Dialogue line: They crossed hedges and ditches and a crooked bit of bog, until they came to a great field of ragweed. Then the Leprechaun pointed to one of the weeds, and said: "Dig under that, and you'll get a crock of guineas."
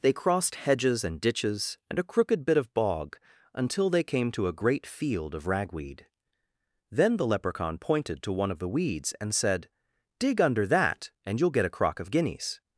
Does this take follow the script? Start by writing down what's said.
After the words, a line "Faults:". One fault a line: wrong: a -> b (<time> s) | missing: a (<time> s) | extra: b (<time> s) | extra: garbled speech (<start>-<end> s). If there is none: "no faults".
They crossed hedges and ditches and a crooked bit of bog, until they came to a great field of ragweed. Then the Leprechaun pointed to one of the weeds, and said: "Dig under that, and you'll get a crock of guineas."
Faults:
no faults